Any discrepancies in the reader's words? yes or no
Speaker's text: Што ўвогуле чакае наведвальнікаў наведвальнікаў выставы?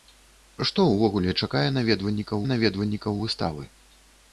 no